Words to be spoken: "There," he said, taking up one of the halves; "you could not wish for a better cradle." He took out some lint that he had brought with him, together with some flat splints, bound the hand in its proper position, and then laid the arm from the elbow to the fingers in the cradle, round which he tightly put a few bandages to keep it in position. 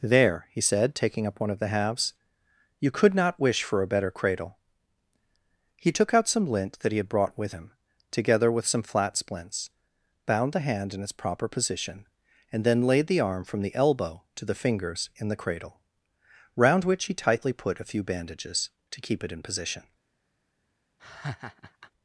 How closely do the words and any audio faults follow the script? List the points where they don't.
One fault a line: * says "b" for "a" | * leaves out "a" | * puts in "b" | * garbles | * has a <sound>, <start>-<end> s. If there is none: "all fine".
* has a laugh, 21.0-21.9 s